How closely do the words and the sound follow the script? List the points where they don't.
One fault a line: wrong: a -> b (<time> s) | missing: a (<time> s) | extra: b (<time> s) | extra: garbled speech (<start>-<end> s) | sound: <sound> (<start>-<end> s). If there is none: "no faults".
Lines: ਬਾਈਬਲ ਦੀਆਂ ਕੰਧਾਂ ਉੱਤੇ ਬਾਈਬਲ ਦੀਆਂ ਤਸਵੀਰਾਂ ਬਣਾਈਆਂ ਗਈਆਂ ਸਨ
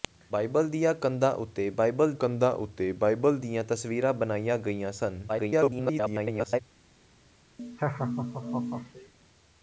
extra: ਕੰਧਾਂ ਉੱਤੇ ਬਾਈਬਲ (2.1 s)
extra: garbled speech (5.3-6.6 s)
sound: laugh (7.6-9.1 s)